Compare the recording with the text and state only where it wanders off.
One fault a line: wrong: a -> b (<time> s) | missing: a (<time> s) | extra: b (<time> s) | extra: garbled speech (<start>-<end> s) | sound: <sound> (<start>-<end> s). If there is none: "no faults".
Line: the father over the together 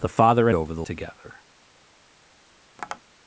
sound: tap (2.8-3.0 s)